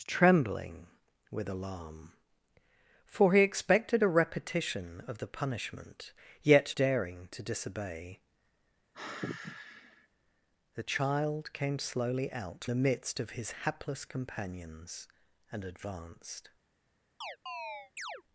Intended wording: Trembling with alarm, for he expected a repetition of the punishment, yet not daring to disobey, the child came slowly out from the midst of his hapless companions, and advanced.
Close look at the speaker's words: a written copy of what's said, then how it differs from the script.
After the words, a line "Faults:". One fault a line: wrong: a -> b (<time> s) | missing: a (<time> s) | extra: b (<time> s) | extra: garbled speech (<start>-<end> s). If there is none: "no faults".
Trembling with alarm, for he expected a repetition of the punishment, yet daring to disobey, the child came slowly out the midst of his hapless companions, and advanced.
Faults:
missing: not (6.8 s)
missing: from (12.6 s)